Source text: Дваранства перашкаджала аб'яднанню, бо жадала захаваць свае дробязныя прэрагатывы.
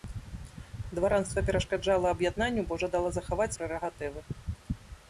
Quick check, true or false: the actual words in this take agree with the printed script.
false